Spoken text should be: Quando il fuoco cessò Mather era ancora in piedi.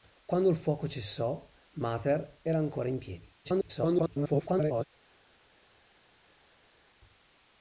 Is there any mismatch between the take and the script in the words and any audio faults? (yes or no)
yes